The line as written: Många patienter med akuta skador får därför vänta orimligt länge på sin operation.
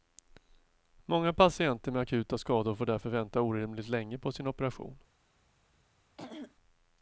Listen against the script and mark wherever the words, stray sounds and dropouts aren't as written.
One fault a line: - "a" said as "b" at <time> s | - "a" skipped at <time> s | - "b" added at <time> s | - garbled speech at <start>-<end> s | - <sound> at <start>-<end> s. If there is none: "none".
- throat clearing at 6.2-6.6 s